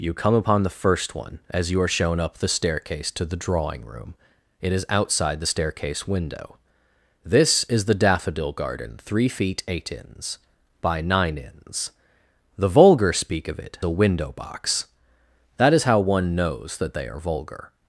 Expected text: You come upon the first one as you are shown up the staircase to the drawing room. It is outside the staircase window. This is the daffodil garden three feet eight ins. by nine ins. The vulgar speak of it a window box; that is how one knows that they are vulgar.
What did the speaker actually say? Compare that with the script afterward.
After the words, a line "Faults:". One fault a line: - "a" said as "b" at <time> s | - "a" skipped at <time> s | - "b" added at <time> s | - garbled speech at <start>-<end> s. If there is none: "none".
You come upon the first one as you are shown up the staircase to the drawing room. It is outside the staircase window. This is the daffodil garden three feet eight ins. by nine ins. The vulgar speak of it a window box; that is how one knows that they are vulgar.
Faults:
none